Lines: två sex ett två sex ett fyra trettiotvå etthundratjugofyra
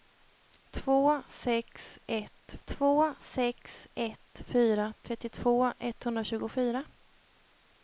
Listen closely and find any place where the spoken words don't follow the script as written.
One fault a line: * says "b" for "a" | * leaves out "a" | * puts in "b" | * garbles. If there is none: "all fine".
all fine